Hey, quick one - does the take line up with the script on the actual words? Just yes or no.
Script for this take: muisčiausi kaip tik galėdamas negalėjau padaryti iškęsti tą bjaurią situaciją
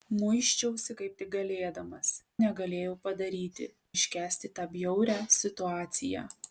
yes